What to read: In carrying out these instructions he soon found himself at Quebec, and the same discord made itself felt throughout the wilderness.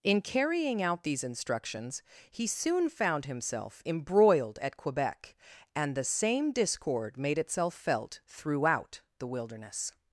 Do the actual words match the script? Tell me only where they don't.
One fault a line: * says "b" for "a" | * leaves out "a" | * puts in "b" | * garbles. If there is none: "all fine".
* puts in "embroiled"